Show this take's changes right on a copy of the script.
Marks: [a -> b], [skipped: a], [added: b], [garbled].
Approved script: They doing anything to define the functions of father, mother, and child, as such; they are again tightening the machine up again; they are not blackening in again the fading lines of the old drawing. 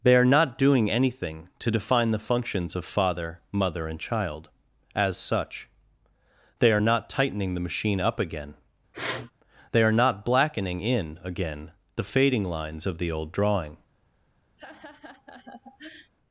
They [added: are not] doing anything to define the functions of father, mother, and child, as such; they are [again -> not] tightening the machine up again; they are not blackening in again the fading lines of the old drawing.